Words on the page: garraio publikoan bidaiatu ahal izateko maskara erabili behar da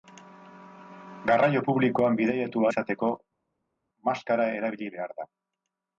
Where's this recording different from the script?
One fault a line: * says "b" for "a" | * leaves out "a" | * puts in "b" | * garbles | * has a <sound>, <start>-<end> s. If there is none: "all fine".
* leaves out "ahal"